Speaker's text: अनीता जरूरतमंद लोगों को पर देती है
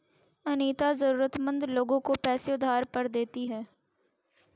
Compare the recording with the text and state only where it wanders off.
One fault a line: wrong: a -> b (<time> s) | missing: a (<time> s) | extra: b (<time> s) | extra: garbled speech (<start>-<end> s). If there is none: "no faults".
extra: पैसे उधार (2.2 s)